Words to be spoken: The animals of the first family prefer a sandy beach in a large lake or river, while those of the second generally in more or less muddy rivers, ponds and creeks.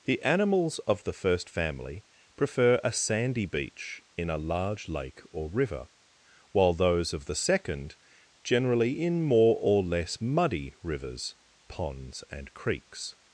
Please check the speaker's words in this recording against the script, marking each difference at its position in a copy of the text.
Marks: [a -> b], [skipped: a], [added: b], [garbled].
The animals of the first family prefer a sandy beach in a large lake or river, while those of the second generally in more or less muddy rivers, ponds and creeks.